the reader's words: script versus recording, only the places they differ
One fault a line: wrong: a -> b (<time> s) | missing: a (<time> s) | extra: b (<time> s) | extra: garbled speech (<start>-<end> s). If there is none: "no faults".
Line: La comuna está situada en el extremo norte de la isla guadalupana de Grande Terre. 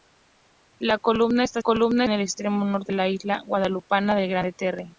wrong: situada -> comuna (1.6 s)
missing: de (2.9 s)